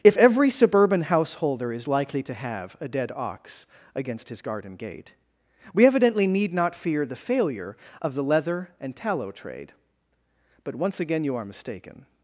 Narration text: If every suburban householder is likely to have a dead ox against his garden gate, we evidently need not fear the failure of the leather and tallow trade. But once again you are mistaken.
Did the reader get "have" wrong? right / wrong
right